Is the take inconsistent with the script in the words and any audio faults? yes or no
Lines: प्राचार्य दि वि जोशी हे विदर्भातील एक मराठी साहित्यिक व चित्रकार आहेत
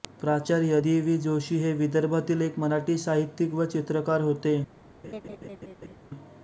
yes